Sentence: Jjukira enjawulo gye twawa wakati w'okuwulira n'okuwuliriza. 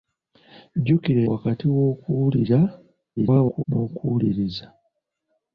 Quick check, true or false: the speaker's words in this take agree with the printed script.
false